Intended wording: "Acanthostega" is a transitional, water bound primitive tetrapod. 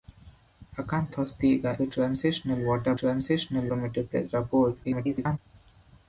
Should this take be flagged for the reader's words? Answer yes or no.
yes